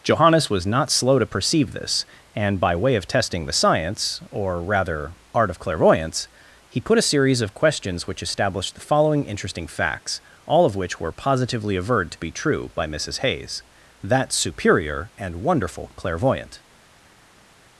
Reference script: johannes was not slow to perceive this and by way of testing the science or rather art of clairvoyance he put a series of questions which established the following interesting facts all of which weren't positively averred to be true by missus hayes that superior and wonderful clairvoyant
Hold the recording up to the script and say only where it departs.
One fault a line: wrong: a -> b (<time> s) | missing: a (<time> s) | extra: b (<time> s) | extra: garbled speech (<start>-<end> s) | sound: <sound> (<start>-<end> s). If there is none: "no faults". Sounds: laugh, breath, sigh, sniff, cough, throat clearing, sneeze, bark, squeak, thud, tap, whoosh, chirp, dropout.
wrong: weren't -> were (11.0 s)